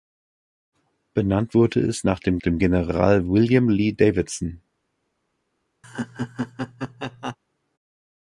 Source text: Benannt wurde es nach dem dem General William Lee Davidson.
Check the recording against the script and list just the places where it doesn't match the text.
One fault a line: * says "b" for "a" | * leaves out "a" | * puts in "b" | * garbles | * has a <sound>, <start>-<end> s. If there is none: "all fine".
* has a laugh, 5.8-7.4 s